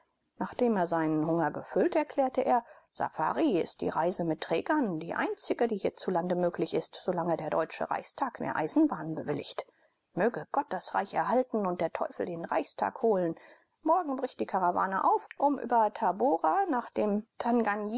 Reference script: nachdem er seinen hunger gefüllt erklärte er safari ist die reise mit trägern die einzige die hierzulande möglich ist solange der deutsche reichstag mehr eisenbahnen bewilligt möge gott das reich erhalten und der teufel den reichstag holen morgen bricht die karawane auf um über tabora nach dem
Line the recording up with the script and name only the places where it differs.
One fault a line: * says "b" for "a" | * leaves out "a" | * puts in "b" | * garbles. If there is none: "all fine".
all fine